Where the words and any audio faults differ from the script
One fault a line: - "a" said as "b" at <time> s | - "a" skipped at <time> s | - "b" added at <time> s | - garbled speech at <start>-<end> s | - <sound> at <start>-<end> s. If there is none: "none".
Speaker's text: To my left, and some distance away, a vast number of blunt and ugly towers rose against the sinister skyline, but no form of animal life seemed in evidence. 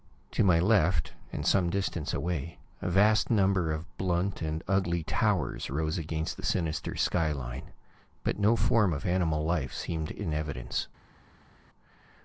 none